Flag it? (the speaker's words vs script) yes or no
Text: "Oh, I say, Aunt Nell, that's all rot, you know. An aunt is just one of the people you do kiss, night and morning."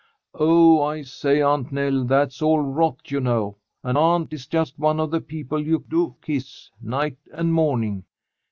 no